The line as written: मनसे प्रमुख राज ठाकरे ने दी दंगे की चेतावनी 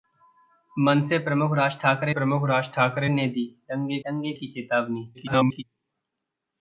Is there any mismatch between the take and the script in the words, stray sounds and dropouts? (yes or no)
yes